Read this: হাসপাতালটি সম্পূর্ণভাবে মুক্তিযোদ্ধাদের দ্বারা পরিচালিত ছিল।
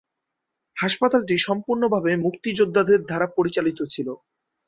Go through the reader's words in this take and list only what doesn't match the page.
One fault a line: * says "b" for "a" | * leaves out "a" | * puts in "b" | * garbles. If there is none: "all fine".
all fine